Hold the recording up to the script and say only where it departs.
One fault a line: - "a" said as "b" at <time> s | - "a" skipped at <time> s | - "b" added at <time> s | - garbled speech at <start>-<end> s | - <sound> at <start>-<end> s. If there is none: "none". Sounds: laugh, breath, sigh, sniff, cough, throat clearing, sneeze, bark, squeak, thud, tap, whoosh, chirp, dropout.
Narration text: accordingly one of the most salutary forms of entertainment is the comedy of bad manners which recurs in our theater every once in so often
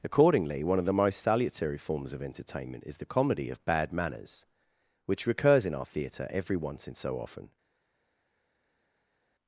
none